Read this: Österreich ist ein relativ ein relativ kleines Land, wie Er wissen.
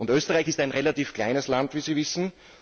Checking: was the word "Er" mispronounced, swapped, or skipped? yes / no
yes